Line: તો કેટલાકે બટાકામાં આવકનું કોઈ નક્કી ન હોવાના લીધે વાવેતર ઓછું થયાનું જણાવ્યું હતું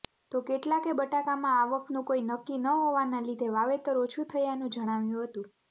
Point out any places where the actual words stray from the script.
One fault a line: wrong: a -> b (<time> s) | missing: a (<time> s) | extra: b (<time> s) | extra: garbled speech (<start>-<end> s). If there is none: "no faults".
no faults